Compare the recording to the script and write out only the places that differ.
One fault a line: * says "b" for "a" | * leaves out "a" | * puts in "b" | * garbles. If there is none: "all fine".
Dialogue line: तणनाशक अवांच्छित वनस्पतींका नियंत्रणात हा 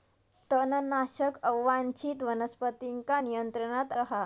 all fine